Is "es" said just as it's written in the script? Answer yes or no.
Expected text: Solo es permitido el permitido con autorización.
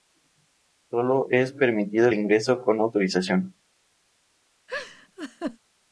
yes